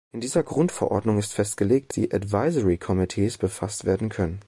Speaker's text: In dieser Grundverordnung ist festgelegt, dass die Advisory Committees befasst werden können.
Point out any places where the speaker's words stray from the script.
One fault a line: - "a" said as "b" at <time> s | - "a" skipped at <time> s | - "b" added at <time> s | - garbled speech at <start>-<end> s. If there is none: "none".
- "dass" skipped at 1.9 s